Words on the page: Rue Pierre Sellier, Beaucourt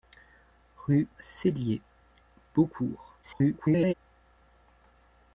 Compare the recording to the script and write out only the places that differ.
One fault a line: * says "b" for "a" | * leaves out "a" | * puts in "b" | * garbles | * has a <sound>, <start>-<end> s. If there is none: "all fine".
* leaves out "Pierre"
* garbles